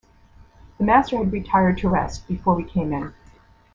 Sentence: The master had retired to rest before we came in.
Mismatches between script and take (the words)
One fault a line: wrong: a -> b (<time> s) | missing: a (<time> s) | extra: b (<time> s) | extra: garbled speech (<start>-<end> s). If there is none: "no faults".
no faults